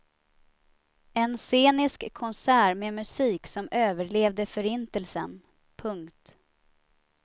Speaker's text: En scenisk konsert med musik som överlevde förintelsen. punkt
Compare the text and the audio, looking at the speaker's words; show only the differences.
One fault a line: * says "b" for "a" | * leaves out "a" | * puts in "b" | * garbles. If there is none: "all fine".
all fine